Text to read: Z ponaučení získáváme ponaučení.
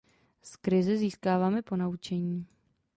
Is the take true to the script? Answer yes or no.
no